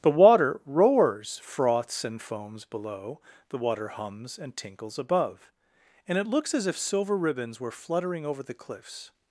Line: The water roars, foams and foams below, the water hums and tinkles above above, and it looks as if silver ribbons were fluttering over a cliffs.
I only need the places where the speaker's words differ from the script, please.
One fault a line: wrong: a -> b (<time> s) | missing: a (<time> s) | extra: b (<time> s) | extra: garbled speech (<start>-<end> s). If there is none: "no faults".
wrong: foams -> froths (1.4 s)
missing: above (5.5 s)
wrong: a -> the (8.4 s)